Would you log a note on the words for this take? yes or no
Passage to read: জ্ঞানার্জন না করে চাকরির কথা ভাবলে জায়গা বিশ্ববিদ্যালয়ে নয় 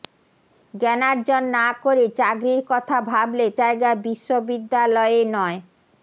no